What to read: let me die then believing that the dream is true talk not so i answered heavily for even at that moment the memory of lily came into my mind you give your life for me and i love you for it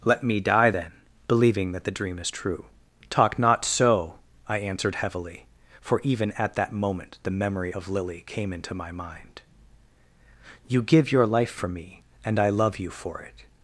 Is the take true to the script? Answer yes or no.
yes